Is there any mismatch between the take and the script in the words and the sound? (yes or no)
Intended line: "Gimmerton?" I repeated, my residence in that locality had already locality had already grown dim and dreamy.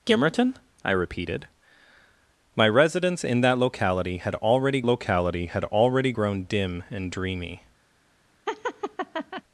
yes